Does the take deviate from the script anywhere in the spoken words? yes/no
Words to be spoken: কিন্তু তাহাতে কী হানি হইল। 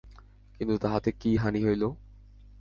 no